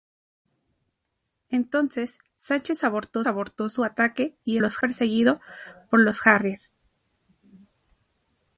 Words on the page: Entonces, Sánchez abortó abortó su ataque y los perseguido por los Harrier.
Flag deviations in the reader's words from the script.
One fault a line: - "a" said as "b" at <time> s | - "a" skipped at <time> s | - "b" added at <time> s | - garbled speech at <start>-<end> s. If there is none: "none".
none